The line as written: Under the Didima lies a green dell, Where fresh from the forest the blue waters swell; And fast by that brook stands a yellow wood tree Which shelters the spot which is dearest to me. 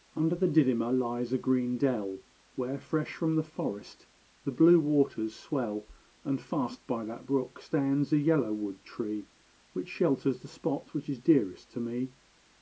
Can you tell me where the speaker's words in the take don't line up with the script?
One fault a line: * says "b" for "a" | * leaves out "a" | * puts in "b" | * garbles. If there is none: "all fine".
all fine